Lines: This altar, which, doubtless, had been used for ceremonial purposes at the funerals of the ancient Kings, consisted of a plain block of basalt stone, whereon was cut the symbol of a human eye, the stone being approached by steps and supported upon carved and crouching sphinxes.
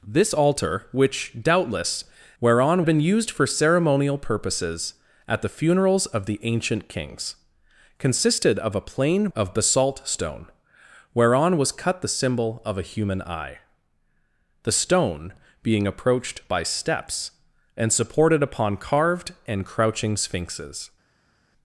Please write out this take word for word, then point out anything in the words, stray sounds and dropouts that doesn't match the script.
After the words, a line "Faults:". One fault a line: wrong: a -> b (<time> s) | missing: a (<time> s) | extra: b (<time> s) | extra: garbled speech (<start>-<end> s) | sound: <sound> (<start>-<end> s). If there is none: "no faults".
This altar, which, doubtless, whereon been used for ceremonial purposes at the funerals of the ancient Kings, consisted of a plain of basalt stone, whereon was cut the symbol of a human eye, the stone being approached by steps and supported upon carved and crouching sphinxes.
Faults:
wrong: had -> whereon (2.4 s)
missing: block (9.3 s)